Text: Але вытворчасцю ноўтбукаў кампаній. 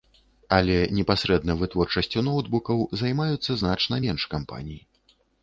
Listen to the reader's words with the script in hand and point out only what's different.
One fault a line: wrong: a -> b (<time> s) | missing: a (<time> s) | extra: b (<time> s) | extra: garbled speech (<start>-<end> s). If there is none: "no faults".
extra: непасрэдна (1.0 s)
extra: займаюцца значна менш (3.0 s)